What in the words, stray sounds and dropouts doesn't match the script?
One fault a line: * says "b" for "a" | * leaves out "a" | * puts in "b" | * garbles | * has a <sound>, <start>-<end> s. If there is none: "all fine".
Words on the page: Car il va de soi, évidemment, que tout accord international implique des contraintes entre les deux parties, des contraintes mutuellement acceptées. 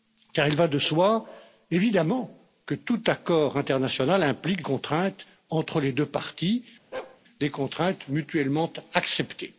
* leaves out "des"
* has a bark, 6.9-7.2 s